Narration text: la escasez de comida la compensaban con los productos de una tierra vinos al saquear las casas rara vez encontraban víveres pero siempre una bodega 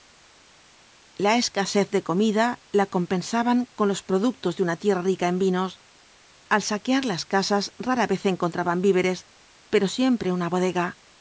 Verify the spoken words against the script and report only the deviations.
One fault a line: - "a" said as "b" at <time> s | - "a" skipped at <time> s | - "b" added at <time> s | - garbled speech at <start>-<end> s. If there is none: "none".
- "rica en" added at 5.0 s